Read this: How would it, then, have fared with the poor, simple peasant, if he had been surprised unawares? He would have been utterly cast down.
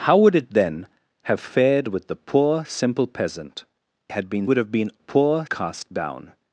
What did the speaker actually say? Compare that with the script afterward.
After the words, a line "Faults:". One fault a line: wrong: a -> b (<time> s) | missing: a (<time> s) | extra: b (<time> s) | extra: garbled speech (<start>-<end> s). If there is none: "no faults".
How would it, then, have fared with the poor, simple peasant, had been would have been poor cast down.
Faults:
missing: if he (3.6 s)
missing: surprised unawares He (4.5 s)
wrong: utterly -> poor (5.0 s)